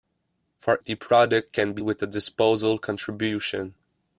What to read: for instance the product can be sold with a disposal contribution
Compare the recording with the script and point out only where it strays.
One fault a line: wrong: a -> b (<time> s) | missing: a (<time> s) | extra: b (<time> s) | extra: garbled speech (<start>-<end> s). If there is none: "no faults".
missing: instance (0.8 s)
missing: sold (1.8 s)